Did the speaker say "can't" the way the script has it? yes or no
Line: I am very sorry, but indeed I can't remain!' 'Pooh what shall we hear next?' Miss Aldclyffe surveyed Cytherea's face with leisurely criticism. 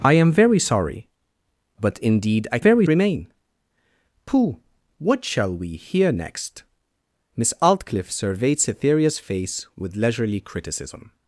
no